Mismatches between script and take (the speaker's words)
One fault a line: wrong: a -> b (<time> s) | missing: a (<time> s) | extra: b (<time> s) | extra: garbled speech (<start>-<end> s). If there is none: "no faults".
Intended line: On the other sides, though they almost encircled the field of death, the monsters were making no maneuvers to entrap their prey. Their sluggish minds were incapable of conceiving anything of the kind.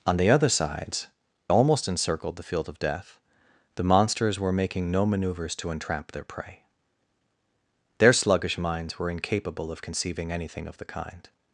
missing: though they (1.1 s)